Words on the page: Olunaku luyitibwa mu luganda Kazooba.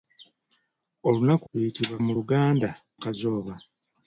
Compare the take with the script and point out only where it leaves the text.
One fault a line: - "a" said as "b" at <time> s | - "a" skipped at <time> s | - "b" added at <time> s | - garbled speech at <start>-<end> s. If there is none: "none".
none